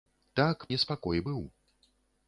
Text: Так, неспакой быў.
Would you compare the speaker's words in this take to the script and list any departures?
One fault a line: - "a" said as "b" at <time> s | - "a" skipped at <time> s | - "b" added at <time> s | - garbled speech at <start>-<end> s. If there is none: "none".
none